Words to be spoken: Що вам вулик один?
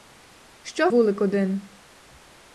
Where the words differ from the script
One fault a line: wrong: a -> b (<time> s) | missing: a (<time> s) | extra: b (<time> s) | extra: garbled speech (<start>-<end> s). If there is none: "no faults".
missing: вам (0.9 s)